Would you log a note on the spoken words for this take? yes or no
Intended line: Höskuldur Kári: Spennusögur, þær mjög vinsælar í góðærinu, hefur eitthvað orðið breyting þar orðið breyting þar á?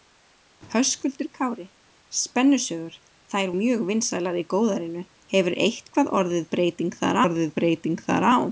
no